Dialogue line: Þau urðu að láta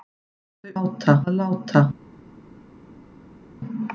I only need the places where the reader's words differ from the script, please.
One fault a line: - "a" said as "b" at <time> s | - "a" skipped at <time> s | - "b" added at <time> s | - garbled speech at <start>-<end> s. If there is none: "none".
- "urðu" said as "láta" at 0.7 s